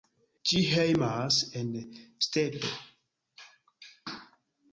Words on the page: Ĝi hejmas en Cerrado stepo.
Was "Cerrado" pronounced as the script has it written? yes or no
no